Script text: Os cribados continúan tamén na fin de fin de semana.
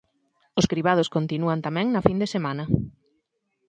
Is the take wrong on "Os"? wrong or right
right